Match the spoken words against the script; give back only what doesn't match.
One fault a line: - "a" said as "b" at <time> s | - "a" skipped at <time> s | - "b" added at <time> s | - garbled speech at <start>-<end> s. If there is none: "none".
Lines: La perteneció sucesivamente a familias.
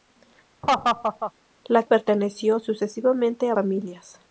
none